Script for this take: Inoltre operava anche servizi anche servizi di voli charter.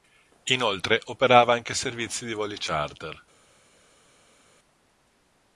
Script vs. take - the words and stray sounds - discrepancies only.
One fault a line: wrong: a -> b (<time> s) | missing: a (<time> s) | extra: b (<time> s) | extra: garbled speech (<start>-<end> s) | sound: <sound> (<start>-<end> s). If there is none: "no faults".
missing: anche servizi (2.2 s)